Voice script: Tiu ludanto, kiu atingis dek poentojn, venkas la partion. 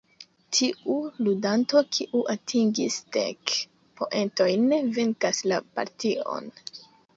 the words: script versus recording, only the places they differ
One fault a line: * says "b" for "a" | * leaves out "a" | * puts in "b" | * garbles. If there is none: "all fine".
all fine